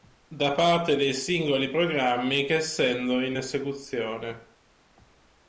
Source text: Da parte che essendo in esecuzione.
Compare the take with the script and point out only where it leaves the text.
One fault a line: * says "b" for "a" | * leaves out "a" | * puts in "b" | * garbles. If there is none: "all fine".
* puts in "dei singoli programmi"